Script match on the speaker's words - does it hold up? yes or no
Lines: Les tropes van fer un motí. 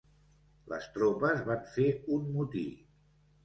yes